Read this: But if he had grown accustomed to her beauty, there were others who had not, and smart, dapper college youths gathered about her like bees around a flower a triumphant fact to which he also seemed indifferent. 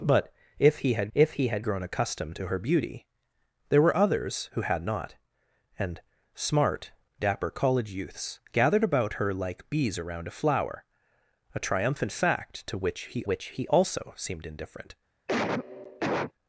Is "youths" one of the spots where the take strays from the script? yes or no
no